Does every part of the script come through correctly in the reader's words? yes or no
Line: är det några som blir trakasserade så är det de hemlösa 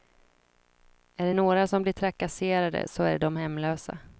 yes